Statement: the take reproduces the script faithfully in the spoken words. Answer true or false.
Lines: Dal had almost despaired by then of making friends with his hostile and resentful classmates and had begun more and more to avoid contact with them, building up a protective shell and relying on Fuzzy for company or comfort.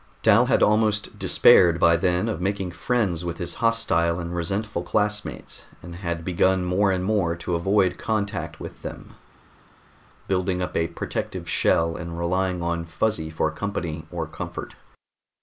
true